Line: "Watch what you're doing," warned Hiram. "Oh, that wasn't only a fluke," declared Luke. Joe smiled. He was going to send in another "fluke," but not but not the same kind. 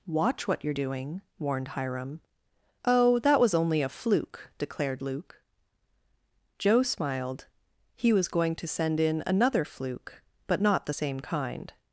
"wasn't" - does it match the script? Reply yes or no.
no